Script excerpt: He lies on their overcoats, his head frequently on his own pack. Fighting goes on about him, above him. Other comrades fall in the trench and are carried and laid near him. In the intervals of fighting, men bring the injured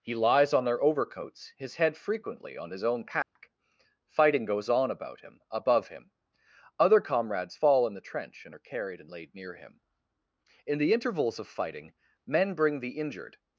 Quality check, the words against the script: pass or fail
pass